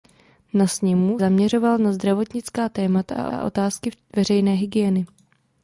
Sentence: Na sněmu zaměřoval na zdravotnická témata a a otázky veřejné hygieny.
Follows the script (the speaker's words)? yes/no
yes